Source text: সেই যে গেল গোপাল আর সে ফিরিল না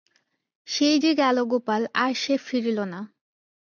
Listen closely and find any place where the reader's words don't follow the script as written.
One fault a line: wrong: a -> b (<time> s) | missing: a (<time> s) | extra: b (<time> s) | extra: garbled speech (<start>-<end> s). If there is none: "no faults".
no faults